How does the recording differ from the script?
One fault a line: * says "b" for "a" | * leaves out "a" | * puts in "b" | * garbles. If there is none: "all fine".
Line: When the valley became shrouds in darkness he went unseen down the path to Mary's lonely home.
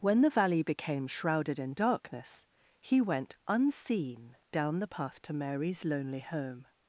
* says "shrouded" for "shrouds"